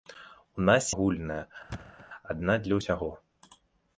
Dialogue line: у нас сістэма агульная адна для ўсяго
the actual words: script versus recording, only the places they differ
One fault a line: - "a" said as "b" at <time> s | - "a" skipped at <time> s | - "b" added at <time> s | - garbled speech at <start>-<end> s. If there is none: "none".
- "сістэма" skipped at 0.9 s